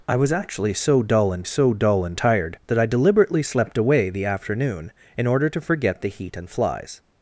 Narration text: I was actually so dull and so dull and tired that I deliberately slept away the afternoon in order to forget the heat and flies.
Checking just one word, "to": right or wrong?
right